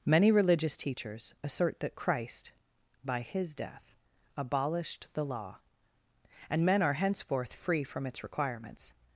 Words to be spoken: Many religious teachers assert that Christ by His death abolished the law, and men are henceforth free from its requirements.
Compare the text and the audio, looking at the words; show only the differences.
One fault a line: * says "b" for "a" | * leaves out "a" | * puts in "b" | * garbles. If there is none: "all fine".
all fine